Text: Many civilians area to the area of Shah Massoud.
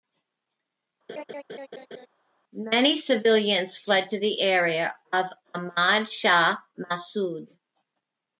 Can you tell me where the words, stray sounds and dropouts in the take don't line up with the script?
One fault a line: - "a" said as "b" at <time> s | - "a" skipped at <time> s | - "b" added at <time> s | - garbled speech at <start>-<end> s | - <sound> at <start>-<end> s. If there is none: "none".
- laugh at 1.1-2.1 s
- "area" said as "fled" at 3.8 s
- "Ahmad" added at 5.5 s